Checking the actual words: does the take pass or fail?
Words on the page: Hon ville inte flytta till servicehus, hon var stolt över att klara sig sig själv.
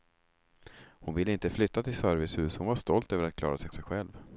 pass